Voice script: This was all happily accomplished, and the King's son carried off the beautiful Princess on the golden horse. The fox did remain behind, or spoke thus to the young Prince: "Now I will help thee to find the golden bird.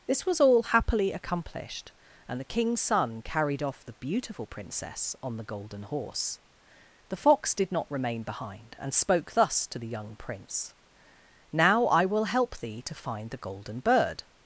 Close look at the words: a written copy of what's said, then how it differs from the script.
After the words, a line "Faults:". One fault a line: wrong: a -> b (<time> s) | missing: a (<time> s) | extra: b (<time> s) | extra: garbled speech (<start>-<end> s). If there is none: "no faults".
This was all happily accomplished, and the King's son carried off the beautiful Princess on the golden horse. The fox did not remain behind, and spoke thus to the young Prince: "Now I will help thee to find the golden bird.
Faults:
extra: not (7.7 s)
wrong: or -> and (8.8 s)